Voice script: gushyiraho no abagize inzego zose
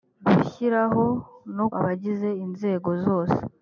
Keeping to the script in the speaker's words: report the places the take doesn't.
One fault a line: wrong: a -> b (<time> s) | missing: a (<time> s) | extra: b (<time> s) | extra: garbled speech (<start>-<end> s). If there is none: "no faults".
no faults